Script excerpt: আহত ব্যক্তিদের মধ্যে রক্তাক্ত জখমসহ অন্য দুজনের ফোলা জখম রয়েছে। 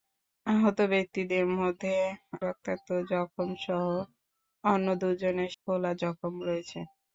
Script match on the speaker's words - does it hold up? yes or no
yes